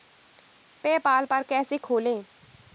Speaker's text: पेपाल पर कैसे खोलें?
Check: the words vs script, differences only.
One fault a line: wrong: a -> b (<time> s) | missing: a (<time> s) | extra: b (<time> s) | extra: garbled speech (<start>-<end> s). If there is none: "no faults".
no faults